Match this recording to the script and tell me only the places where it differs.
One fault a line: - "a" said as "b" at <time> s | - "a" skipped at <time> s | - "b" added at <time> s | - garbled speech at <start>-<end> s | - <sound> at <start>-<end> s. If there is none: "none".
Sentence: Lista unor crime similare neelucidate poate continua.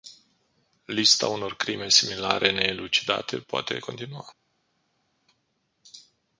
none